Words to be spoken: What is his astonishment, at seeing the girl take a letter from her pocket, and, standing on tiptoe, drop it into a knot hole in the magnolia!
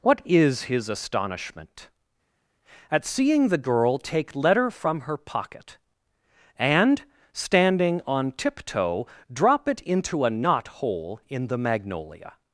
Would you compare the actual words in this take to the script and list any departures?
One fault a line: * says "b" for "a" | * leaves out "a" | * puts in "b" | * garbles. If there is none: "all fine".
* leaves out "a"